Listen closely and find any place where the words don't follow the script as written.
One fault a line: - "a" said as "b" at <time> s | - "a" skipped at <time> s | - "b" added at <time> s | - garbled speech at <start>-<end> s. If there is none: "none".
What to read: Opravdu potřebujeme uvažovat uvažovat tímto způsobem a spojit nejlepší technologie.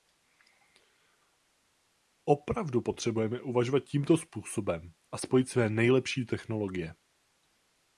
- "uvažovat" skipped at 3.8 s
- "své" added at 5.5 s